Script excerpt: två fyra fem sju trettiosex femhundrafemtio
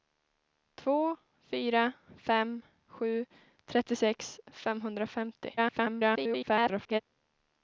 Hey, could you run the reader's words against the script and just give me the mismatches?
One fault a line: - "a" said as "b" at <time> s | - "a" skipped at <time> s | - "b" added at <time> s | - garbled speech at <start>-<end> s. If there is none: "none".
- garbled speech at 5.6-7.0 s